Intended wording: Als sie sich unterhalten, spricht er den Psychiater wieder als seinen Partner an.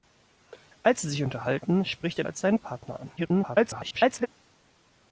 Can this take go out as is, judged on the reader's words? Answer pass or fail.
fail